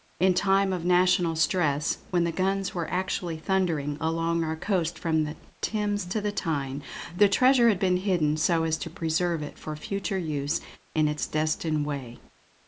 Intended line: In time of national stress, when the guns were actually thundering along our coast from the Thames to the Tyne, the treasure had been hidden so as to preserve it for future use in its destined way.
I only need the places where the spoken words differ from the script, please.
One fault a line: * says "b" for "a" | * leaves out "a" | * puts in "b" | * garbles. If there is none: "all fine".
all fine